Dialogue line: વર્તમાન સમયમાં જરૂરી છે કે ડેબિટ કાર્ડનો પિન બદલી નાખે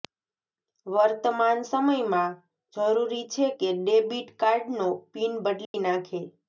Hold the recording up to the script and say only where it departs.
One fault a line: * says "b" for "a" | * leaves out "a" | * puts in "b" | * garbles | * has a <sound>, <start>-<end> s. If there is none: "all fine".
* has a dropout, 5.7-5.7 s